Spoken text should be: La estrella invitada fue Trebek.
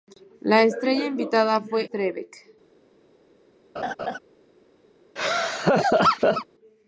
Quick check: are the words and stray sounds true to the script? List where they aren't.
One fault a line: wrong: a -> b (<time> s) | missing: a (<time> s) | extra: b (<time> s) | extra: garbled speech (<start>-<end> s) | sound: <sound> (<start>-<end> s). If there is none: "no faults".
sound: laugh (3.8-4.2 s)
sound: laugh (5.2-6.5 s)